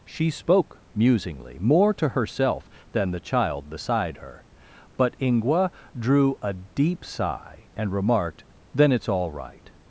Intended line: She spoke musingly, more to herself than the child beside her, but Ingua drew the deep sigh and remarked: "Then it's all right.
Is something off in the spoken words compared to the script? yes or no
yes